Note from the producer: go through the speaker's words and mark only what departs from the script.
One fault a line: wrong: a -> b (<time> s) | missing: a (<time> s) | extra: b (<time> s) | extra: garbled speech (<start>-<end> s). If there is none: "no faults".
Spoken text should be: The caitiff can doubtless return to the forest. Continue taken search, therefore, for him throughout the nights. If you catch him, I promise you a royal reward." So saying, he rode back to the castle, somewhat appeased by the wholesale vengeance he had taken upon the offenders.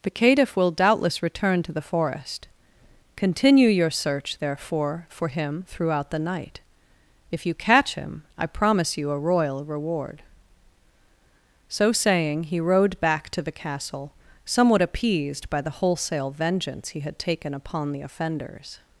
wrong: can -> will (0.6 s)
wrong: taken -> your (3.7 s)
wrong: nights -> night (6.2 s)